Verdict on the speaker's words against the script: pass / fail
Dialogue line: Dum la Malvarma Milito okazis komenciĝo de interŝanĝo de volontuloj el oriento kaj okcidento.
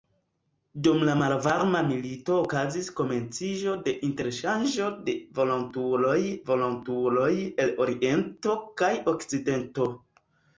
fail